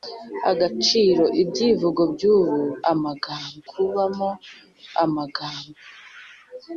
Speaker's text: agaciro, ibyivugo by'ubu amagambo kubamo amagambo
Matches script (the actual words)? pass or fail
pass